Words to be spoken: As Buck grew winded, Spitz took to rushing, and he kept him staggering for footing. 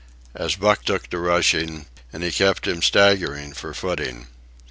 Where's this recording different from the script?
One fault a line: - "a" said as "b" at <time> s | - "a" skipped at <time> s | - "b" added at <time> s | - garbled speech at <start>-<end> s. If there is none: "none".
- "grew winded Spitz" skipped at 0.8 s